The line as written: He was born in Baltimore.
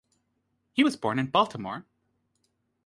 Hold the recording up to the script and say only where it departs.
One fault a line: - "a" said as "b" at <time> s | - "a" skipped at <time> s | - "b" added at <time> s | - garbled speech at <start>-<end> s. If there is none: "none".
none